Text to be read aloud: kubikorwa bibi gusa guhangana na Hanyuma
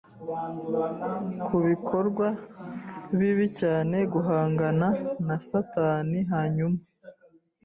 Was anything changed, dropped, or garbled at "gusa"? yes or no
yes